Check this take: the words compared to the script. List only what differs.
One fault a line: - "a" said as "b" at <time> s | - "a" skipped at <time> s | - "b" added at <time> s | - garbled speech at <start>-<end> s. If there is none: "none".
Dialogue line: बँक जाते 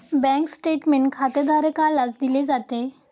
- "स्टेटमेंट खातेधारकालाच दिले" added at 0.5 s